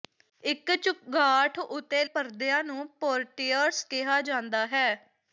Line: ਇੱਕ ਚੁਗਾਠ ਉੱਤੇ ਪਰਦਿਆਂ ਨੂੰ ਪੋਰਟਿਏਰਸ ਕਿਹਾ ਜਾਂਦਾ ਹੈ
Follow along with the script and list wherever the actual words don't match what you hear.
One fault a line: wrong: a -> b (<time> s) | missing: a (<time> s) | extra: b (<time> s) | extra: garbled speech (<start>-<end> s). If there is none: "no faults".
no faults